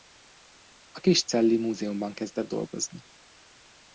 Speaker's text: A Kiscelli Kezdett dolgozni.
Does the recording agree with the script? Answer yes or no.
no